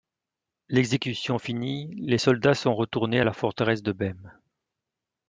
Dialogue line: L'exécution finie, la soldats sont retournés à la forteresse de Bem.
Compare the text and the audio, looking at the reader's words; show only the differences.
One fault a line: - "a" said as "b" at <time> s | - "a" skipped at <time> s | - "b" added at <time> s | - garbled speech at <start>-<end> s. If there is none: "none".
- "la" said as "les" at 2.0 s